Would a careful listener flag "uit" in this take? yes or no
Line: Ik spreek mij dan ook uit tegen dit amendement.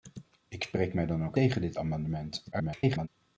yes